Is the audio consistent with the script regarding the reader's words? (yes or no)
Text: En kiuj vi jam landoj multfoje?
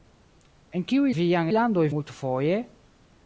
yes